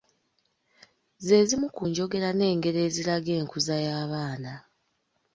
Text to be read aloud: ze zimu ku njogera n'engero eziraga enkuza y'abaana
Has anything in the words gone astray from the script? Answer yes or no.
no